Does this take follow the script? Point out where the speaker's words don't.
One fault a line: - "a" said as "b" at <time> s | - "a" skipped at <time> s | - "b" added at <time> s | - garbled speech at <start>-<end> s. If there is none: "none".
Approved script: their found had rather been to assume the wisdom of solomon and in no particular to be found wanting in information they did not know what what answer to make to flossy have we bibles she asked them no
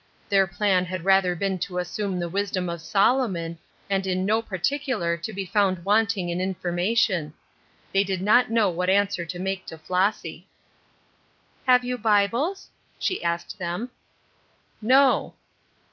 - "found" said as "plan" at 0.5 s
- "what" skipped at 8.9 s
- "we" said as "you" at 11.8 s